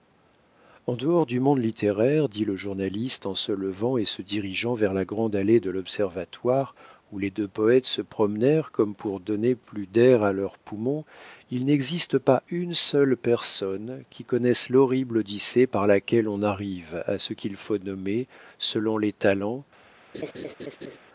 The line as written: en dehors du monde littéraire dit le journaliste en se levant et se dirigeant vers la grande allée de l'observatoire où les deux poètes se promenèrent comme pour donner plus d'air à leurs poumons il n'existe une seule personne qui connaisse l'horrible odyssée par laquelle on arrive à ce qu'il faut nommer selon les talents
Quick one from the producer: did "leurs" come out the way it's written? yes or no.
yes